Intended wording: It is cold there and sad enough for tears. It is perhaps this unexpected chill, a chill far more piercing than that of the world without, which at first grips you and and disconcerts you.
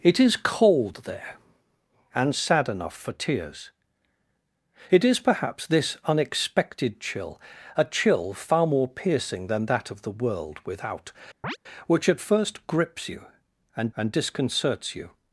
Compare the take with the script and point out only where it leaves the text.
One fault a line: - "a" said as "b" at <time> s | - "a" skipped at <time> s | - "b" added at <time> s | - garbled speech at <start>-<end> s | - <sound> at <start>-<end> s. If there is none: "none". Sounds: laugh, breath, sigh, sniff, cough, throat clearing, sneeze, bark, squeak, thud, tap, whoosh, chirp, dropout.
- chirp at 11.4-11.6 s